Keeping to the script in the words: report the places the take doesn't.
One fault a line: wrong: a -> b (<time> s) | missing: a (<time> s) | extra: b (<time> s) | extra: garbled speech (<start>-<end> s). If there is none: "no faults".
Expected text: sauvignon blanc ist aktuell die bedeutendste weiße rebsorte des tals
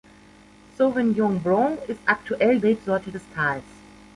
missing: die bedeutendste weiße (2.6 s)